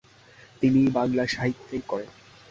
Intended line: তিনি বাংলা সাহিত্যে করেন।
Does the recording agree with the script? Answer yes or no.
yes